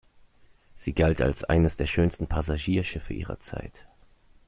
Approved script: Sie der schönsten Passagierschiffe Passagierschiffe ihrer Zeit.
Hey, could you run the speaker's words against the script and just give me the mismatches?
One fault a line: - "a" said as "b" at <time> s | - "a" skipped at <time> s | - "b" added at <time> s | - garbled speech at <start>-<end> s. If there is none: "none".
- "galt als eines" added at 0.9 s
- "Passagierschiffe" skipped at 3.1 s